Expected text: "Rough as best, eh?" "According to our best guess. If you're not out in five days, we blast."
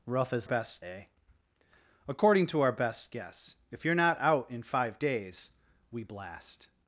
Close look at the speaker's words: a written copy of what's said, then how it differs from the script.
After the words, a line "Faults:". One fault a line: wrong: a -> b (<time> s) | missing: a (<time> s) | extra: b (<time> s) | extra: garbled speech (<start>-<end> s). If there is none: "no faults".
"Rough as best, eh?" "According to our best guess. If you're not out in five days, we blast."
Faults:
no faults